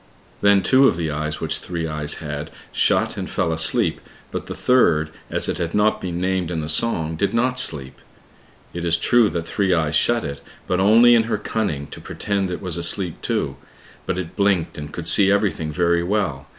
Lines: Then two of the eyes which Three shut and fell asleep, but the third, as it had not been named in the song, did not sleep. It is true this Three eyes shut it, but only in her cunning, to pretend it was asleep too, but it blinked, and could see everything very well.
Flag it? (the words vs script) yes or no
yes